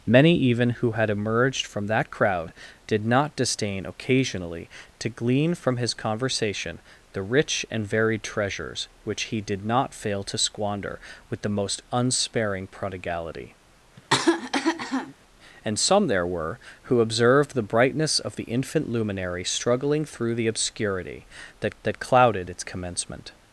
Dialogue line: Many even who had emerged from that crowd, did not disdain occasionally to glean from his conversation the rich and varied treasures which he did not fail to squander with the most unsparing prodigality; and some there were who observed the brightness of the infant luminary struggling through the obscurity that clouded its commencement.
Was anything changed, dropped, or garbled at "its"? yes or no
no